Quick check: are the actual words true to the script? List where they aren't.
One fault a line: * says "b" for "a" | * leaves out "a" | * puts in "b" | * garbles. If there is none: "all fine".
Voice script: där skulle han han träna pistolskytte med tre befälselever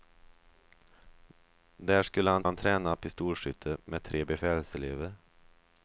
all fine